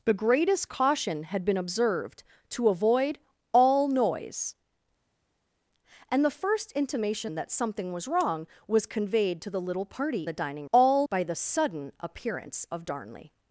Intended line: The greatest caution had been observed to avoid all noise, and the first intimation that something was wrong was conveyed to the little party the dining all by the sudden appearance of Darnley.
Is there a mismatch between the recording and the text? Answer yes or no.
no